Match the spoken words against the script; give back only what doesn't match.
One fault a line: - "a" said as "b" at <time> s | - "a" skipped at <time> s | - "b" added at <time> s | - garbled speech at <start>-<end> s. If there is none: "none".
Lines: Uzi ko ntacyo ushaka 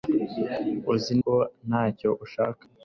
none